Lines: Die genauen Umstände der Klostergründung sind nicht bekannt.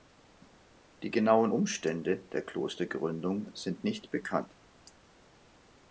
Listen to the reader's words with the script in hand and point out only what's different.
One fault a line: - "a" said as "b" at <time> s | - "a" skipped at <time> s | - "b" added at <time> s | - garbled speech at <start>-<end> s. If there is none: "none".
none